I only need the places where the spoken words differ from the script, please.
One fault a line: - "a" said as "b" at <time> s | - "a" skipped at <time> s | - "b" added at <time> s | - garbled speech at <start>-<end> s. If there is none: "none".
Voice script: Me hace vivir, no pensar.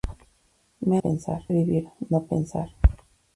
- "hace" said as "pensar" at 1.0 s